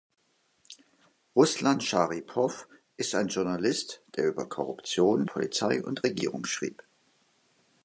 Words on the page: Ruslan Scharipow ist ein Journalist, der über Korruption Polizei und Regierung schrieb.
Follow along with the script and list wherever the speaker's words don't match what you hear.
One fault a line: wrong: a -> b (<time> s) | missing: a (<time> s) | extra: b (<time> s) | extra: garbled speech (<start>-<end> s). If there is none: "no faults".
no faults